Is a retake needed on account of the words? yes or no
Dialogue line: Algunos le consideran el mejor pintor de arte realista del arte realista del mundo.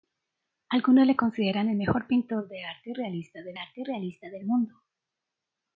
no